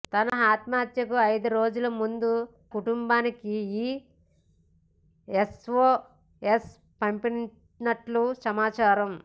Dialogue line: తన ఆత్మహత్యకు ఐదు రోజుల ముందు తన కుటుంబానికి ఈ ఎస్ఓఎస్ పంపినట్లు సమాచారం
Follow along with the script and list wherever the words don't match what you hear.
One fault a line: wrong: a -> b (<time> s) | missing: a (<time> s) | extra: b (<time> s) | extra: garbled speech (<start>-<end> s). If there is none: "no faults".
missing: తన (2.3 s)